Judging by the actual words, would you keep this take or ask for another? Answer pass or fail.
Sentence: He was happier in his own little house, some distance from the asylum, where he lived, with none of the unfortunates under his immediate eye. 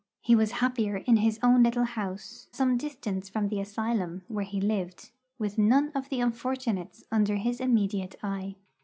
pass